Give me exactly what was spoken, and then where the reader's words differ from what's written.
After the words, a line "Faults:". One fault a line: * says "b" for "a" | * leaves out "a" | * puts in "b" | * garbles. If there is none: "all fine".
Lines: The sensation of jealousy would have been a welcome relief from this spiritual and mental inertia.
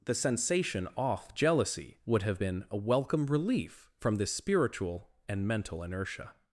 The sensation off jealousy would have been a welcome relief from this spiritual and mental inertia.
Faults:
* says "off" for "of"